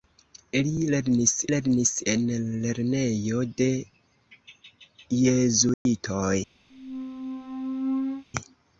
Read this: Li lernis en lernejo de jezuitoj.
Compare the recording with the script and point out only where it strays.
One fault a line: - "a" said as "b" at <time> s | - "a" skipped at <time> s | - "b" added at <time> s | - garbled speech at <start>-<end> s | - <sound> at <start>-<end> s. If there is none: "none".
- "lernis" added at 1.5 s
- dropout at 5.7-5.9 s
- squeak at 6.7-8.2 s